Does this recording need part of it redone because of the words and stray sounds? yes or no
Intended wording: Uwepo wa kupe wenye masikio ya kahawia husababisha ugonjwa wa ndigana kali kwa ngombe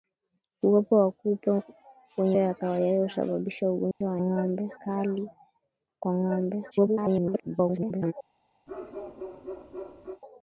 yes